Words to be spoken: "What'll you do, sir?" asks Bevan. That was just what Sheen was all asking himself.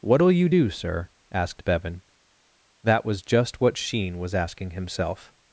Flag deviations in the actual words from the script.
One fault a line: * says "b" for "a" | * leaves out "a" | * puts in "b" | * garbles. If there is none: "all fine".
* says "asked" for "asks"
* leaves out "all"